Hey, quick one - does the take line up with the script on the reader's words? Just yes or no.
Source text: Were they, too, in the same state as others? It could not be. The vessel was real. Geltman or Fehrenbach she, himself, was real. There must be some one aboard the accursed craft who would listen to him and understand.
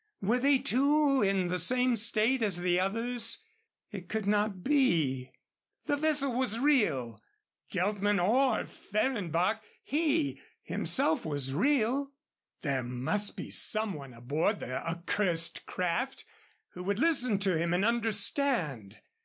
no